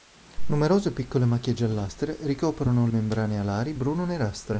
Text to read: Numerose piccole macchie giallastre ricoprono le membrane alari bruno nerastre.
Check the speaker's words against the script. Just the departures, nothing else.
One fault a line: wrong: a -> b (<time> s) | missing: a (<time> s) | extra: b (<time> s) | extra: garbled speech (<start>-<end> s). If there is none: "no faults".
missing: le (2.9 s)